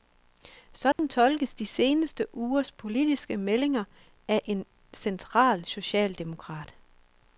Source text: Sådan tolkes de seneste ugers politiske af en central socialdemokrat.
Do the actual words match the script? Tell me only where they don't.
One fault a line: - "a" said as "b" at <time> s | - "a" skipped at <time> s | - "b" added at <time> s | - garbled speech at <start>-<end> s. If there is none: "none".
- "meldinger" added at 3.4 s